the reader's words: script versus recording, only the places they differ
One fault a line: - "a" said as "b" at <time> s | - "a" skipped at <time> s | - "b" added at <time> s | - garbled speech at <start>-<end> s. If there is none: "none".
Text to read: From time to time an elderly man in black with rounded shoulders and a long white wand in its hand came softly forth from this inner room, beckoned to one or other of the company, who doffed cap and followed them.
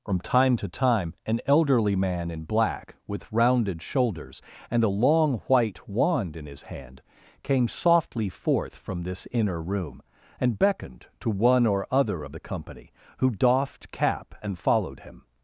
- "its" said as "his" at 6.5 s
- "and" added at 10.4 s
- "them" said as "him" at 15.0 s